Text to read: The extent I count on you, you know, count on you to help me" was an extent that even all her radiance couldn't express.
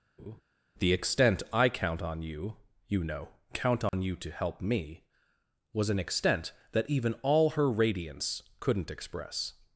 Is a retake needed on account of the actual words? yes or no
no